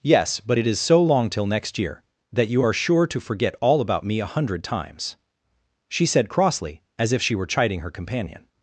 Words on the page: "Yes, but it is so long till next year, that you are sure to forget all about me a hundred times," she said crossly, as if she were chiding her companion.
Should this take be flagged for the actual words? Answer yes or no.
no